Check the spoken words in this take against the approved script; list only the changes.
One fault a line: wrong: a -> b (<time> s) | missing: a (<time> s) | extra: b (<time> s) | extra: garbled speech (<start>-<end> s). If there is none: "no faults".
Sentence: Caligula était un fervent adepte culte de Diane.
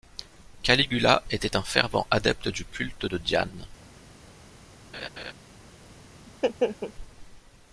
extra: du (2.5 s)